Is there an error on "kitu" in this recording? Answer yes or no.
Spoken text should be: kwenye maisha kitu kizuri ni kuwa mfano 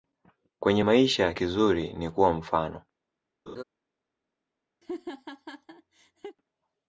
yes